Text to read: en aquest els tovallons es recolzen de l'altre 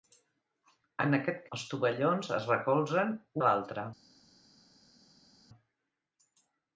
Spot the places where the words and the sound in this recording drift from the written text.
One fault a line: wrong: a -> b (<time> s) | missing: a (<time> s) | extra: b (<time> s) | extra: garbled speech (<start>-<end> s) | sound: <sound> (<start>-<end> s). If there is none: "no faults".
no faults